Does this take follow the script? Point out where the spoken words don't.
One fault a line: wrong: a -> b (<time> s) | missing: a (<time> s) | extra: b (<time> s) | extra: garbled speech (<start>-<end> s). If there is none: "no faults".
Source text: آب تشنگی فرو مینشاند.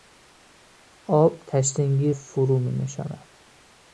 no faults